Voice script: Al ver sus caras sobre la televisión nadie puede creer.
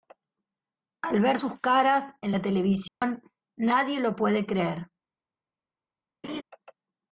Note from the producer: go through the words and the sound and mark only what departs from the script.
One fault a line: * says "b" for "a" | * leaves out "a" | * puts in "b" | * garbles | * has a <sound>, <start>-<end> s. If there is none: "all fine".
* says "en" for "sobre"
* has a dropout, 2.9-3.0 s
* puts in "lo"
* has a laugh, 6.2-6.4 s